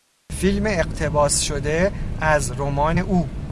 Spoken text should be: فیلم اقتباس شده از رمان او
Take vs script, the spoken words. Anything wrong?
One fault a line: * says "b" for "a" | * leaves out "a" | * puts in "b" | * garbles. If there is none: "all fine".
all fine